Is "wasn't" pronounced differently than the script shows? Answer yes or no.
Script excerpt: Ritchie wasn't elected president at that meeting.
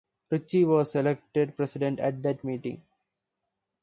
yes